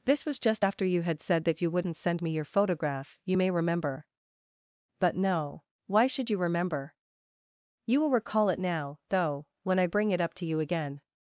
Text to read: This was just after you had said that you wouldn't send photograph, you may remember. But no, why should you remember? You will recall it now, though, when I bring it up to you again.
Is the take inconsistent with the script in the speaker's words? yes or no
yes